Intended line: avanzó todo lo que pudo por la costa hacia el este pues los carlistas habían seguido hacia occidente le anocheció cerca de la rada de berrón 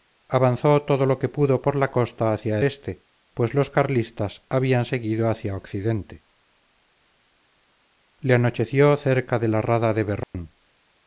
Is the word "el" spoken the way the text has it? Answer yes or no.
no